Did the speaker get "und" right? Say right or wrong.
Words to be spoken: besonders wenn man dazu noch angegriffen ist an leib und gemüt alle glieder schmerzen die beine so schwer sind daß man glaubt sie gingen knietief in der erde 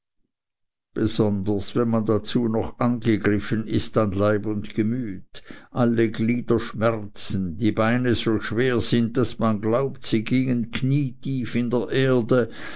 right